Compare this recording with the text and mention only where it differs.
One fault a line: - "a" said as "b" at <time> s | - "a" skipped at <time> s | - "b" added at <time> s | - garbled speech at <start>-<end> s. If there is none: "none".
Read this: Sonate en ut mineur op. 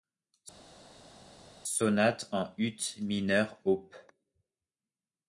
none